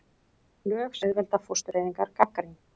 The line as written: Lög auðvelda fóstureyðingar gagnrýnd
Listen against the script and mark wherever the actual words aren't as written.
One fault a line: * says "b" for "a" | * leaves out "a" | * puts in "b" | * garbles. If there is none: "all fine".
all fine